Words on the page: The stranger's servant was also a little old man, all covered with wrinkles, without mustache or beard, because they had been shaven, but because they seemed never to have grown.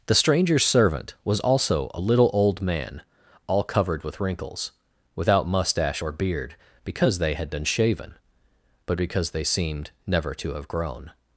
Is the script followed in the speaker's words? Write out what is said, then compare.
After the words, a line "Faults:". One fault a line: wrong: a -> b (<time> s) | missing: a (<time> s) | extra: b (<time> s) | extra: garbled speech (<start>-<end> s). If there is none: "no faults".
The stranger's servant was also a little old man, all covered with wrinkles, without mustache or beard, because they had been shaven, but because they seemed never to have grown.
Faults:
no faults